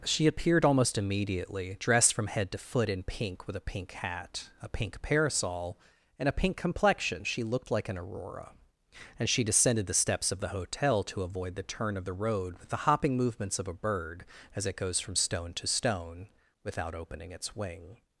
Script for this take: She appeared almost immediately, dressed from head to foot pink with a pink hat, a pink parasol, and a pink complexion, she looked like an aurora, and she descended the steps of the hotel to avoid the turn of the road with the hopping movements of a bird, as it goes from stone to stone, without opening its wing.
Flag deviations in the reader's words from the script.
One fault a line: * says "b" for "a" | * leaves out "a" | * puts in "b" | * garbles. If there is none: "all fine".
* puts in "in"